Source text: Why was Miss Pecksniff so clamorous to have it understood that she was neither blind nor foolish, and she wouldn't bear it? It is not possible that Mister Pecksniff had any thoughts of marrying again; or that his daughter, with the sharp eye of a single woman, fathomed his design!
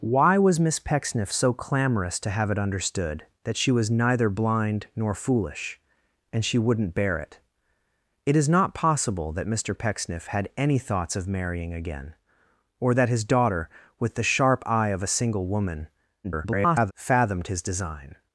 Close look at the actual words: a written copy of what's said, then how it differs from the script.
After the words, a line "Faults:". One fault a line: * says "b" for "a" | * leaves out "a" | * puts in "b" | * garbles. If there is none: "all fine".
Why was Miss Pecksniff so clamorous to have it understood that she was neither blind nor foolish, and she wouldn't bear it? It is not possible that Mister Pecksniff had any thoughts of marrying again; or that his daughter, with the sharp eye of a single woman, [garbled] fathomed his design!
Faults:
* garbles